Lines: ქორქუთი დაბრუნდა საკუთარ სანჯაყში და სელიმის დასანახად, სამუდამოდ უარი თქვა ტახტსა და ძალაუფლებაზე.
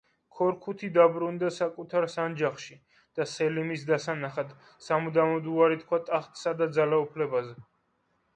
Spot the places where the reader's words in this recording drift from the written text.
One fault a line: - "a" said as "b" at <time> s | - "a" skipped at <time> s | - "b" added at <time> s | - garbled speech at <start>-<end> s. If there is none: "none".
none